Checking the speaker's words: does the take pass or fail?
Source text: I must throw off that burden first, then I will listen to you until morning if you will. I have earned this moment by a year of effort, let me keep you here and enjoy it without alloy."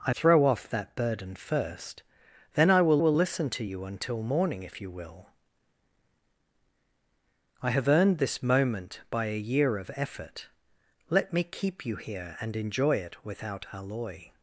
fail